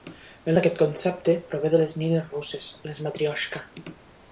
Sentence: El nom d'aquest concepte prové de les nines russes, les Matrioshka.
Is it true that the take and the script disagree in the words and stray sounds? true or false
true